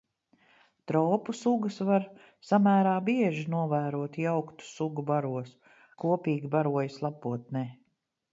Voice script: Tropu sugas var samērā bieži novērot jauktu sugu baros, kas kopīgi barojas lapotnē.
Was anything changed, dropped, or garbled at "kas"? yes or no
yes